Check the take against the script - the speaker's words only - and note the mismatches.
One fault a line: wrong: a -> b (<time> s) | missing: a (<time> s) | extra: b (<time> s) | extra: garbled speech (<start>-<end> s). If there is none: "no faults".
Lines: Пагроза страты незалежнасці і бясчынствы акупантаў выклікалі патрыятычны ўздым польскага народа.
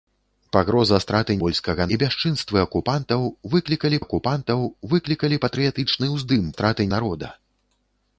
wrong: незалежнасці -> польскага (1.4 s)
extra: акупантаў выклікалі (4.0 s)
wrong: польскага -> страты (6.5 s)